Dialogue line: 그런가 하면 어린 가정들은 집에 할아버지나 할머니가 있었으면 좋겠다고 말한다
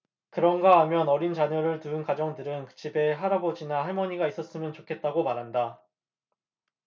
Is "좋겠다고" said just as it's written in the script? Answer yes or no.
yes